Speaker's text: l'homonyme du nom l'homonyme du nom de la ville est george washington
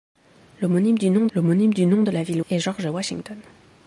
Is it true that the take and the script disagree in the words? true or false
false